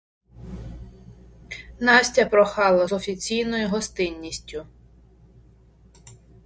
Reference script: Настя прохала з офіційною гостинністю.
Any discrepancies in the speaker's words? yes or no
no